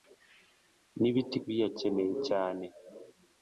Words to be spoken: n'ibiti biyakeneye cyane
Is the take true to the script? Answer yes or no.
yes